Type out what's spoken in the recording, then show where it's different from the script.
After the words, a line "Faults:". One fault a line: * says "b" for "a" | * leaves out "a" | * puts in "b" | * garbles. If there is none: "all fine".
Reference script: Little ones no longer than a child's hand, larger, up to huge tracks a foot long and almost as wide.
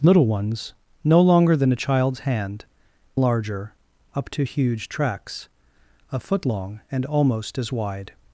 Little ones no longer than a child's hand, larger, up to huge tracks a foot long and almost as wide.
Faults:
all fine